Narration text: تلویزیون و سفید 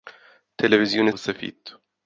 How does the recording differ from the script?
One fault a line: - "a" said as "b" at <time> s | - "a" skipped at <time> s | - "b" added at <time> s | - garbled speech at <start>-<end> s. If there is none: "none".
none